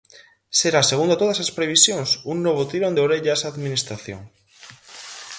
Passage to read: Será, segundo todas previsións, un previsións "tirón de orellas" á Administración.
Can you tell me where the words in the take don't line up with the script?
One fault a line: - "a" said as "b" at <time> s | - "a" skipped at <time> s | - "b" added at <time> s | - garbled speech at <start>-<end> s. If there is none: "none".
- "as" added at 1.4 s
- "previsións" said as "novo" at 2.5 s